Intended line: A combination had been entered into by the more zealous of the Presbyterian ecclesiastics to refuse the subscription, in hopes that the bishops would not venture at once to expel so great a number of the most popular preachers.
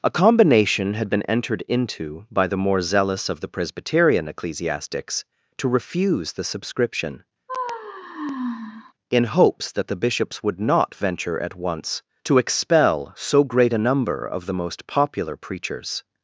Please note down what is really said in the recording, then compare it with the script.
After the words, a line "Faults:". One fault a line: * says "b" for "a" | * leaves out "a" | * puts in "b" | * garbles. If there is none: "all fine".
A combination had been entered into by the more zealous of the Presbyterian ecclesiastics to refuse the subscription, in hopes that the bishops would not venture at once to expel so great a number of the most popular preachers.
Faults:
all fine